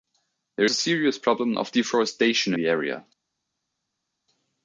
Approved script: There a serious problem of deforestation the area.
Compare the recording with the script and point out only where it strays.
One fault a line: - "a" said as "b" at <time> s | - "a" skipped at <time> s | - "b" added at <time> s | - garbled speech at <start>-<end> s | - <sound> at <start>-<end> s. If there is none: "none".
none